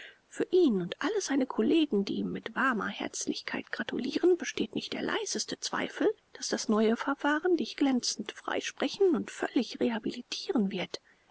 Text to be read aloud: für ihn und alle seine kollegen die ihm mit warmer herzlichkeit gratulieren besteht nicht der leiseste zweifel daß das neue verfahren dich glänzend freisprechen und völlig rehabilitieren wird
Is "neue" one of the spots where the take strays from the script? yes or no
no